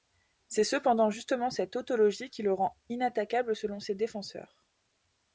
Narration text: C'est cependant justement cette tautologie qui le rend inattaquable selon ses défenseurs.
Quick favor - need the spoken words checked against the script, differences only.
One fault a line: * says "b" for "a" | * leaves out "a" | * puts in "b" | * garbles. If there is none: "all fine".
all fine